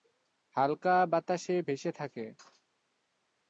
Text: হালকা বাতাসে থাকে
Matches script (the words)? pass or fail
fail